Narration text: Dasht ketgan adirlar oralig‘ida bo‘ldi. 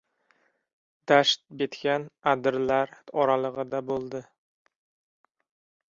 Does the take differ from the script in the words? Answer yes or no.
no